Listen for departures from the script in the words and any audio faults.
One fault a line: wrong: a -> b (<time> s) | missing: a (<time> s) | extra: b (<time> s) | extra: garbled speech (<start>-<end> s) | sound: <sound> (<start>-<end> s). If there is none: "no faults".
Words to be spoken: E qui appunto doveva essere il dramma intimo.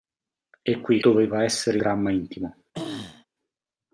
missing: appunto (1.0 s)
missing: il (1.8 s)
sound: throat clearing (2.7-3.3 s)